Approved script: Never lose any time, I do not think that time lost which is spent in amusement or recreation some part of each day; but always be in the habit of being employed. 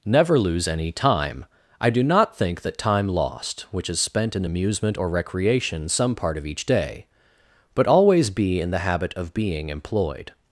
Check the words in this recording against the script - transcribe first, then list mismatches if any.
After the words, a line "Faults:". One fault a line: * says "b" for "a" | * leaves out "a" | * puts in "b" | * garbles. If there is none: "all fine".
Never lose any time, I do not think that time lost which is spent in amusement or recreation some part of each day; but always be in the habit of being employed.
Faults:
all fine